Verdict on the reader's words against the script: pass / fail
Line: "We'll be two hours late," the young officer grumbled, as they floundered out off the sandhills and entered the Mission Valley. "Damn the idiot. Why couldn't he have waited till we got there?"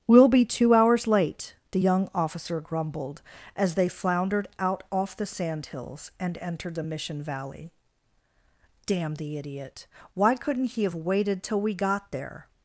pass